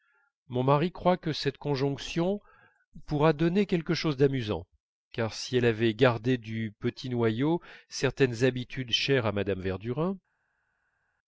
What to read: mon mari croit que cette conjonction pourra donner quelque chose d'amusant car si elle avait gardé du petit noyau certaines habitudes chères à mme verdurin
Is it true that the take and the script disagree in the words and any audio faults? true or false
false